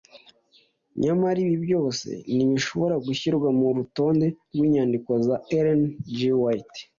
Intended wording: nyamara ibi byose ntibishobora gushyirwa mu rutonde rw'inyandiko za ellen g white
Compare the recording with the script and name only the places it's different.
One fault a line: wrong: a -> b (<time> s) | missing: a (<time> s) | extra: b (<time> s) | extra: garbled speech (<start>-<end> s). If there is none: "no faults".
no faults